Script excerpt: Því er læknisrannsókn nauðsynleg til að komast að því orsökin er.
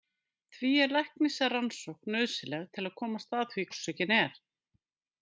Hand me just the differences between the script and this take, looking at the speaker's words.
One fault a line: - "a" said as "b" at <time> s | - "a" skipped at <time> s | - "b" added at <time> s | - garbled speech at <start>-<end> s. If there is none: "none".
none